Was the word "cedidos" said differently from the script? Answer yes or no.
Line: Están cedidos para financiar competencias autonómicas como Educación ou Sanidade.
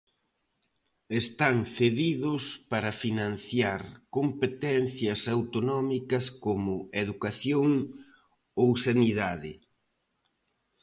no